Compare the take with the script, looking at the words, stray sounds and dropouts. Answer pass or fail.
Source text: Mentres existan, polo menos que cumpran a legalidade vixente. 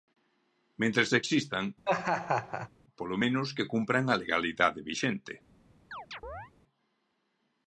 fail